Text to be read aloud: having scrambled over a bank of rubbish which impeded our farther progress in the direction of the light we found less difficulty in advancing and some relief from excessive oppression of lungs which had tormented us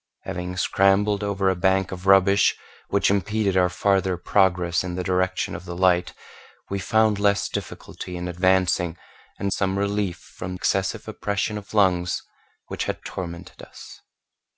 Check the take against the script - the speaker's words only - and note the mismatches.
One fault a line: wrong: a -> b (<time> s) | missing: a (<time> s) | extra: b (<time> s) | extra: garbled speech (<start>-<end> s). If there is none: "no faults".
no faults